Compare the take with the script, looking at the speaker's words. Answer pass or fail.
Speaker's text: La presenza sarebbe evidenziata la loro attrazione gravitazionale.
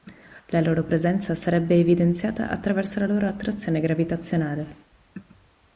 fail